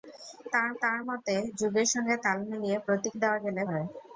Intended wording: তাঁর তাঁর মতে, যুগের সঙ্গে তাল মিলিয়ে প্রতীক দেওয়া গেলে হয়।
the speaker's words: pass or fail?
pass